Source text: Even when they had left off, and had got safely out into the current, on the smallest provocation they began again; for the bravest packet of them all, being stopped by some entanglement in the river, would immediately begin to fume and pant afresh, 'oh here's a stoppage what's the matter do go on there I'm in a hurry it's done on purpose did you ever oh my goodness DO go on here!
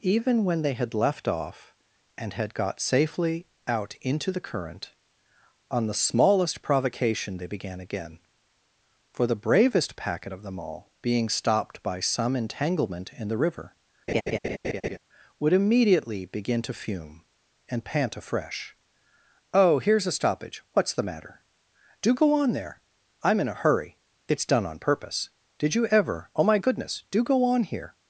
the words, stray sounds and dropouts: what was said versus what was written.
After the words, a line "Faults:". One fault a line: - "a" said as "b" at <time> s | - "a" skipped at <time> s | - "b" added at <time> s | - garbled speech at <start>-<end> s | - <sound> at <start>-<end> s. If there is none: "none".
Even when they had left off, and had got safely out into the current, on the smallest provocation they began again; for the bravest packet of them all, being stopped by some entanglement in the river, would immediately begin to fume and pant afresh, 'oh here's a stoppage what's the matter do go on there I'm in a hurry it's done on purpose did you ever oh my goodness DO go on here!
Faults:
- laugh at 14.1-15.0 s